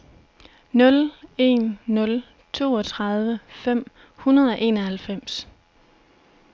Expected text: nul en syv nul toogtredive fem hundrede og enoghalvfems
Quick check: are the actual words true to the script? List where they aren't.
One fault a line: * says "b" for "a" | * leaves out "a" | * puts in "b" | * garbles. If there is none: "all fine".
* leaves out "syv"